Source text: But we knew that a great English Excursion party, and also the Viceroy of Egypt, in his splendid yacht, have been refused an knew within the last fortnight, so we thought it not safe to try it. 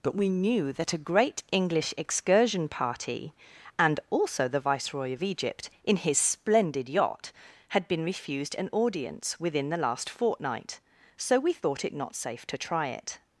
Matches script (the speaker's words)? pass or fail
fail